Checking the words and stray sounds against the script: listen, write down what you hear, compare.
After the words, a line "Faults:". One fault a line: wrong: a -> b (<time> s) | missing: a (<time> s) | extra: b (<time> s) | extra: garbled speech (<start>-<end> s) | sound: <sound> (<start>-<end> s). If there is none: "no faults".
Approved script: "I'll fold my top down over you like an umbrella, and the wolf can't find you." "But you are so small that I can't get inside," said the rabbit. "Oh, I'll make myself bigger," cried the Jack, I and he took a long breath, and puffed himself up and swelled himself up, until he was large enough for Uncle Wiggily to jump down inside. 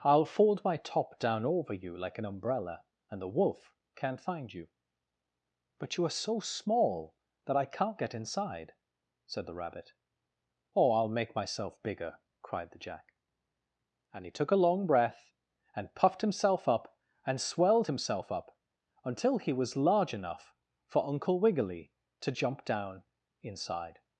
"I'll fold my top down over you like an umbrella, and the wolf can't find you." "But you are so small that I can't get inside," said the rabbit. "Oh, I'll make myself bigger," cried the Jack, and he took a long breath, and puffed himself up and swelled himself up, until he was large enough for Uncle Wiggily to jump down inside.
Faults:
missing: I (13.1 s)